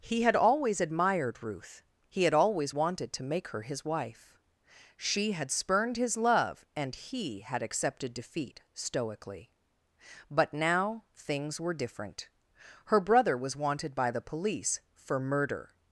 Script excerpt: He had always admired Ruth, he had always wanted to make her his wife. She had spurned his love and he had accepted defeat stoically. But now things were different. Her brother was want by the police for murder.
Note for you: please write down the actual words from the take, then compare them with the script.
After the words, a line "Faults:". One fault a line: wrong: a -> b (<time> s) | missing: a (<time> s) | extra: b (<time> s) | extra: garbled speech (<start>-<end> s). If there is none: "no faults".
He had always admired Ruth, he had always wanted to make her his wife. She had spurned his love and he had accepted defeat stoically. But now things were different. Her brother was wanted by the police for murder.
Faults:
wrong: want -> wanted (13.6 s)